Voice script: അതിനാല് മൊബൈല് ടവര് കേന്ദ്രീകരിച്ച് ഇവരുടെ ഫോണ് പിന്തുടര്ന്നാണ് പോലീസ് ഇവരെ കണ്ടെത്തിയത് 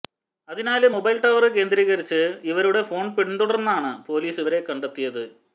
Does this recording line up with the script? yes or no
yes